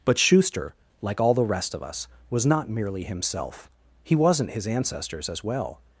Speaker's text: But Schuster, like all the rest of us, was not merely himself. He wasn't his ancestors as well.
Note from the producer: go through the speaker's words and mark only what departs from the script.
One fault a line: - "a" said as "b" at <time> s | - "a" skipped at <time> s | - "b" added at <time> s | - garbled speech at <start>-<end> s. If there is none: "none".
none